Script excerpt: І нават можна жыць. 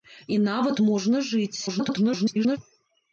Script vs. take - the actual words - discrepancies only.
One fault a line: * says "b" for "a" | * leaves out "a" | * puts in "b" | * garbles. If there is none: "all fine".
* garbles